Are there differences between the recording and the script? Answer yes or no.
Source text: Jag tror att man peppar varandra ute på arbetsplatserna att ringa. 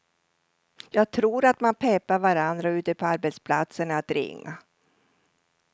no